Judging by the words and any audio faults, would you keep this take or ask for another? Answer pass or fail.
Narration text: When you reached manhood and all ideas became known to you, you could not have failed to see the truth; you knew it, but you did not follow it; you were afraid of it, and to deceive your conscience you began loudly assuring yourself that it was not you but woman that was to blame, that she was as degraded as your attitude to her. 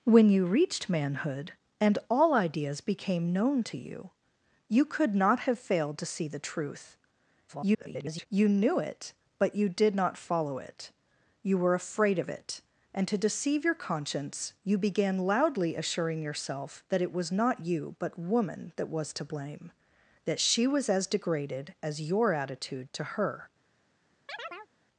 fail